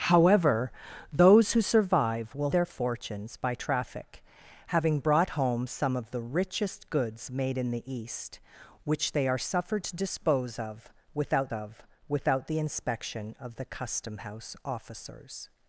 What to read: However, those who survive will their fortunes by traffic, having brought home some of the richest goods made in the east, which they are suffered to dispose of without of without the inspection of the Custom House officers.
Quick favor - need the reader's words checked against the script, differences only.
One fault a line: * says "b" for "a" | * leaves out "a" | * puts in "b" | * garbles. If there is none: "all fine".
all fine